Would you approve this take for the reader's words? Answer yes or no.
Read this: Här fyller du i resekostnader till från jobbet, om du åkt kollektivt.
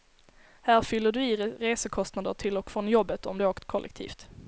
no